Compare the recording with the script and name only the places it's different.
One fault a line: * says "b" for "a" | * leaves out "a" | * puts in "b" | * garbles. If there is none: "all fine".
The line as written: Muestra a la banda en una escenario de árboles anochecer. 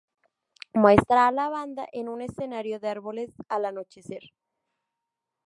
* says "un" for "una"
* puts in "al"